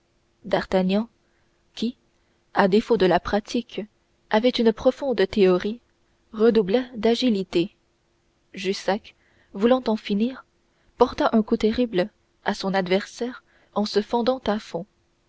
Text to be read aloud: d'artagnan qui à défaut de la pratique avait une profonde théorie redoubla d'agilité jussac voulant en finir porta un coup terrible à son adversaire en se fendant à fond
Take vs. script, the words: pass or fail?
pass